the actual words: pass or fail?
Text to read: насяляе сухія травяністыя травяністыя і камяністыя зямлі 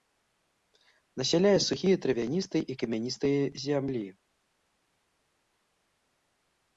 fail